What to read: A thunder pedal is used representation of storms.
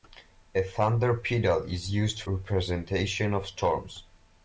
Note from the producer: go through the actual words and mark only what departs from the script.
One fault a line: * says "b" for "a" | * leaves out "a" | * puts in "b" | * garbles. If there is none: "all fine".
all fine